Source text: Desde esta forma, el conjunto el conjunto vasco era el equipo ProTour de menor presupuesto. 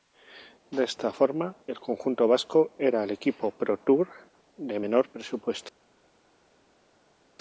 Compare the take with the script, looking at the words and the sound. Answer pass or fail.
fail